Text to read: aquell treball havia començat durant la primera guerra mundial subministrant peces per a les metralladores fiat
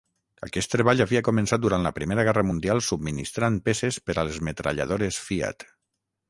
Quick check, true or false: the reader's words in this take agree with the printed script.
false